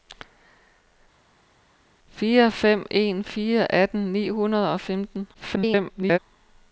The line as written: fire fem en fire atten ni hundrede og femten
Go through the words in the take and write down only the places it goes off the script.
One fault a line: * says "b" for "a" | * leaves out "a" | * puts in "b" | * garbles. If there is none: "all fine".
* garbles